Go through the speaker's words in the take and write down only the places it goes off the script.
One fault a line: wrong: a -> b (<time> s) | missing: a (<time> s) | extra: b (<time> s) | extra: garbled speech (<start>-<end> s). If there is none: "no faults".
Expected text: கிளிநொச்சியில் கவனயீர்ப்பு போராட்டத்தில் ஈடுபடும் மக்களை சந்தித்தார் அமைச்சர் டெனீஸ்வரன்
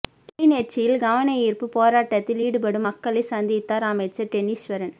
no faults